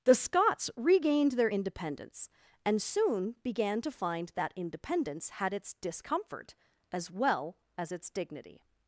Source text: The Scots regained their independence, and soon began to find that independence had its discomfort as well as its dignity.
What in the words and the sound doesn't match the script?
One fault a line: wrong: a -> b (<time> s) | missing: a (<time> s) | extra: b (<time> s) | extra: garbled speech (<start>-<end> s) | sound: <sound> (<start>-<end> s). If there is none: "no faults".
no faults